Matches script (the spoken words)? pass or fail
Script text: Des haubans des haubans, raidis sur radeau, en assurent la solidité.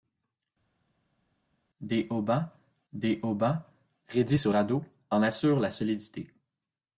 pass